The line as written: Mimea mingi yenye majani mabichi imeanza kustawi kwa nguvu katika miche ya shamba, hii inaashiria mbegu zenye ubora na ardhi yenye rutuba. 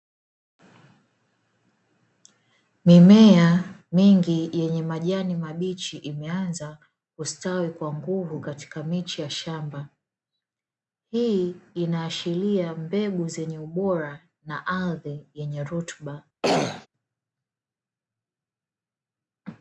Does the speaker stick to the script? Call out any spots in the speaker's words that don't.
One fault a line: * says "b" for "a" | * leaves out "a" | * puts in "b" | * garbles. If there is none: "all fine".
all fine